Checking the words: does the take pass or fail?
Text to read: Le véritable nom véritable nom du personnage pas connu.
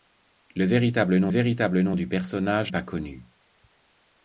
pass